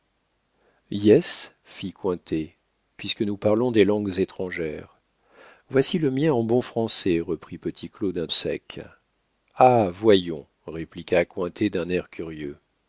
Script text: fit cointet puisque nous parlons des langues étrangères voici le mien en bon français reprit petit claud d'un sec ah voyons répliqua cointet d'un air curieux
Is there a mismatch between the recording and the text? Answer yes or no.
no